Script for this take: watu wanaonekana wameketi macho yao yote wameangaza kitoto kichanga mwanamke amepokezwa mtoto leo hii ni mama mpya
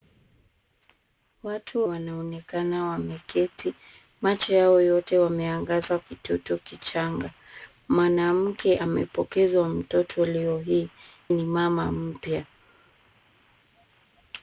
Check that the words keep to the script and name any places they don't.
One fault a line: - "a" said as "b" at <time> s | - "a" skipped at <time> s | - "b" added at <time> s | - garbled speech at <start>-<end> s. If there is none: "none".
none